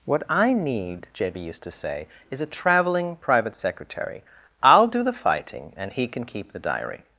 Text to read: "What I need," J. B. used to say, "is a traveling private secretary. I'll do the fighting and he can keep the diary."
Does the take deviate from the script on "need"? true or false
false